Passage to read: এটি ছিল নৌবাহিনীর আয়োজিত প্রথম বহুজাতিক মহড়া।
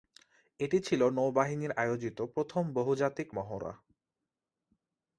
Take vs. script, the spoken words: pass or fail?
pass